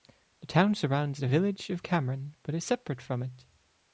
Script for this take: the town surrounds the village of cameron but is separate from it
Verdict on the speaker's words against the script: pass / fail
pass